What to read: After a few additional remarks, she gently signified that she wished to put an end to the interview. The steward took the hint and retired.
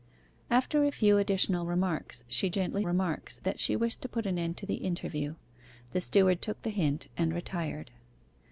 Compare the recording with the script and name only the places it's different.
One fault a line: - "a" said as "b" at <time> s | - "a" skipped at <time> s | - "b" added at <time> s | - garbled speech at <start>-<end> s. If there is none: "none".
- "signified" said as "remarks" at 2.8 s